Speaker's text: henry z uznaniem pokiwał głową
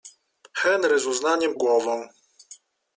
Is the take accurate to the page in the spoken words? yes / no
no